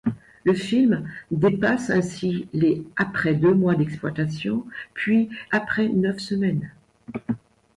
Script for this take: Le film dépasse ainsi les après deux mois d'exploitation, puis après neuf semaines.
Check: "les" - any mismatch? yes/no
no